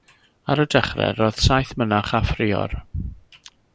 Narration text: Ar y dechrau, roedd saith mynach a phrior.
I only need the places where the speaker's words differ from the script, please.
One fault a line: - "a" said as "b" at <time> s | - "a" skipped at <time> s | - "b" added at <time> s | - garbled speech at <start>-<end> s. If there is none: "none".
none